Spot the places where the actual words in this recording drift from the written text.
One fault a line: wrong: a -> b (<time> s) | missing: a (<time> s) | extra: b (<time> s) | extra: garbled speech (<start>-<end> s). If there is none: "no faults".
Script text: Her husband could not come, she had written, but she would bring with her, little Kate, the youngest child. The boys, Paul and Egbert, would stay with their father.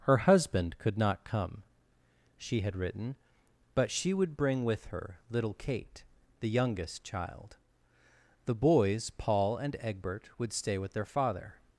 no faults